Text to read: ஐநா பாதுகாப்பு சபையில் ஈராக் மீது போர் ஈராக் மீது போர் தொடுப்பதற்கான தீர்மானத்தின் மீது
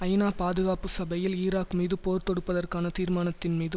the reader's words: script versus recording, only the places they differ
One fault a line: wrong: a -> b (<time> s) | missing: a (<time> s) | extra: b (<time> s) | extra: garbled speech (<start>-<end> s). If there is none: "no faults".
missing: ஈராக் மீது போர் (2.3 s)